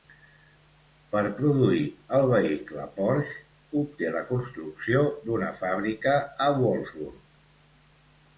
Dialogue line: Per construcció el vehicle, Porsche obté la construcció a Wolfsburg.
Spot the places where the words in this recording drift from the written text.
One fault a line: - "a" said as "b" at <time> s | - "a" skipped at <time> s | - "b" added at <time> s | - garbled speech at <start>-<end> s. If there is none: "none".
- "construcció" said as "produir" at 1.4 s
- "d'una fàbrica" added at 5.3 s